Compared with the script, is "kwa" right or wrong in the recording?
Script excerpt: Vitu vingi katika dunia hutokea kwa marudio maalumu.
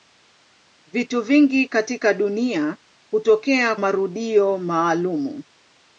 wrong